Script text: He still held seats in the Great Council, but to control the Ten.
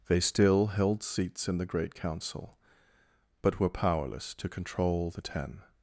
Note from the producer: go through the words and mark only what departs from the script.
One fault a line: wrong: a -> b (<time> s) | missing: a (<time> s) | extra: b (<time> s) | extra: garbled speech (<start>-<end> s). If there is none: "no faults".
wrong: He -> They (0.1 s)
extra: were powerless (3.6 s)